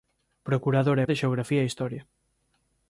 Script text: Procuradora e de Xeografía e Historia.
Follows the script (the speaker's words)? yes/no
yes